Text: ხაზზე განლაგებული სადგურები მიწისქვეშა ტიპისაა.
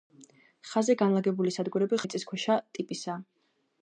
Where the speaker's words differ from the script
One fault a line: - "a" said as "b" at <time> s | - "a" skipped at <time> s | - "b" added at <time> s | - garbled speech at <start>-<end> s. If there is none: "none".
none